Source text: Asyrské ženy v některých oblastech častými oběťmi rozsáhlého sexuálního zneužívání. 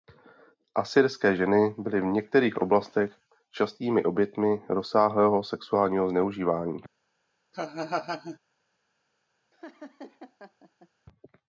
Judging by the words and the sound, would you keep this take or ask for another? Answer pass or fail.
fail